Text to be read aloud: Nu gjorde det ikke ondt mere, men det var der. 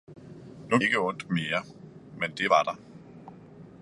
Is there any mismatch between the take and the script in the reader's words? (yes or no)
yes